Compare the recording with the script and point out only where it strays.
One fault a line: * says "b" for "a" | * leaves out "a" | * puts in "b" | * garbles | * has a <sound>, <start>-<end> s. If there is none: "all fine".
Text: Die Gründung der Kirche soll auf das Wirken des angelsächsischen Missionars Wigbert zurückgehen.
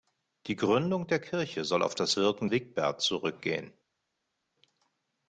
* leaves out "des angelsächsischen Missionars"